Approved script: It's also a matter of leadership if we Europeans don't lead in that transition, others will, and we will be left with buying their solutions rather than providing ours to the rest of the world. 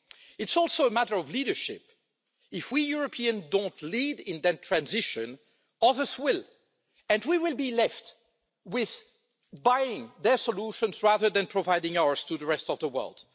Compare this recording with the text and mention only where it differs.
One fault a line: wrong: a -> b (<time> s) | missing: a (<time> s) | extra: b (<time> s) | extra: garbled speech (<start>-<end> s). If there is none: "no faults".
no faults